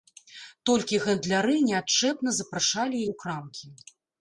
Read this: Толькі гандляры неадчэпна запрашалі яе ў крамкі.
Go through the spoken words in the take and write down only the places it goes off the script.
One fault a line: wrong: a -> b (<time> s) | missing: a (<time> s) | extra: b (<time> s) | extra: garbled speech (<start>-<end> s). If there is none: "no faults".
missing: яе (3.1 s)